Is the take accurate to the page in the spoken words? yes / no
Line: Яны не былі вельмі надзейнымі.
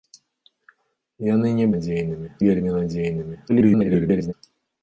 no